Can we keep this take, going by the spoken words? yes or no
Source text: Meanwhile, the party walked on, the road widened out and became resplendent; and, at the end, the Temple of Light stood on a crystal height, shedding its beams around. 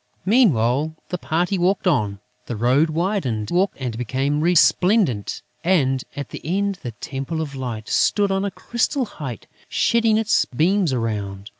no